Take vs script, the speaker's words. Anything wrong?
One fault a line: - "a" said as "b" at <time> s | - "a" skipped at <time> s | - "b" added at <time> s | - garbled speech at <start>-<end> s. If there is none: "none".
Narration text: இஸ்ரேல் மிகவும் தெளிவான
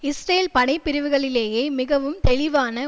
- "படைப்பிரிவுகளிலேயே" added at 0.5 s